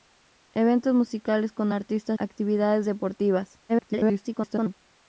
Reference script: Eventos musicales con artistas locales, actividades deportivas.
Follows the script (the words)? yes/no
no